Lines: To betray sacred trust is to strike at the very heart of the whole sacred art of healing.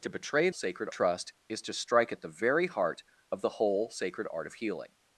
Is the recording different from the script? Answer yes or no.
no